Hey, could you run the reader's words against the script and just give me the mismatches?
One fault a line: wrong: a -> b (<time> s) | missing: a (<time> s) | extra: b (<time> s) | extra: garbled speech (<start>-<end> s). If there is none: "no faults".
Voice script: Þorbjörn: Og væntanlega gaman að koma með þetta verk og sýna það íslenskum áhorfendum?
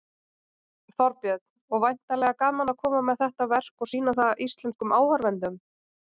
no faults